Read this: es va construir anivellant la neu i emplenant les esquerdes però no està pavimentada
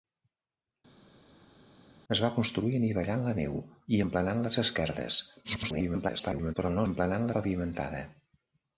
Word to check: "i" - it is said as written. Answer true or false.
true